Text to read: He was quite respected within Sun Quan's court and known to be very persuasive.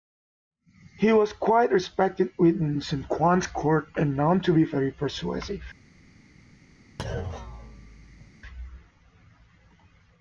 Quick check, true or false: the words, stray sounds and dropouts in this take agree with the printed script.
false